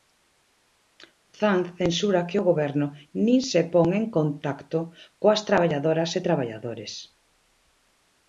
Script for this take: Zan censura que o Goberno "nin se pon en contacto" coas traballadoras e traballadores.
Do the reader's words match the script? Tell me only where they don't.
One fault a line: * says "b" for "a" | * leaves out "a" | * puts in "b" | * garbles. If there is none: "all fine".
all fine